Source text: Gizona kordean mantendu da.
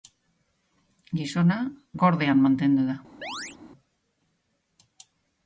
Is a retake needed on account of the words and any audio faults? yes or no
yes